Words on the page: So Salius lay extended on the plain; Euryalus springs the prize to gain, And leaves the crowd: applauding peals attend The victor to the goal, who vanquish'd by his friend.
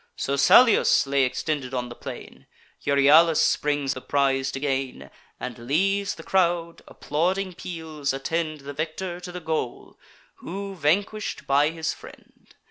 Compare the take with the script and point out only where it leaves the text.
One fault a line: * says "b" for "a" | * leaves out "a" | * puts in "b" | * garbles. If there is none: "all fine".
all fine